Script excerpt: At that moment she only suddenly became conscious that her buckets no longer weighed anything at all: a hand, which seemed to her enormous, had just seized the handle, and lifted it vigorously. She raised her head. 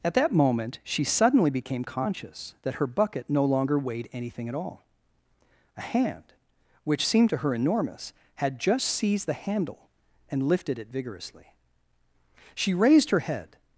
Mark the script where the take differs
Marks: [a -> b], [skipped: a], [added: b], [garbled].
At that moment she [skipped: only] suddenly became conscious that her [buckets -> bucket] no longer weighed anything at all: a hand, which seemed to her enormous, had just seized the handle, and lifted it vigorously. She raised her head.